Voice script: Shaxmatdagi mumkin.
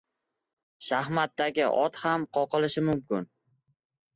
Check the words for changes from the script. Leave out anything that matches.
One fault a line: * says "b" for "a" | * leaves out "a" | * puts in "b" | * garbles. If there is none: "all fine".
* puts in "ot ham qoqilishi"